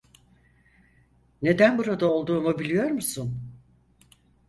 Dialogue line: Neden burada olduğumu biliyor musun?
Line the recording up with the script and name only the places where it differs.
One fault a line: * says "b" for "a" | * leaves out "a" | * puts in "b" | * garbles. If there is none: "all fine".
all fine